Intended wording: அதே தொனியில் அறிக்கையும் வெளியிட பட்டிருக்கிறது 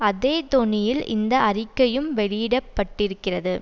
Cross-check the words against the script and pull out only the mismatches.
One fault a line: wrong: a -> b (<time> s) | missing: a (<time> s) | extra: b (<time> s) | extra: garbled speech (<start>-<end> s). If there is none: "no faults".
extra: இந்த (1.1 s)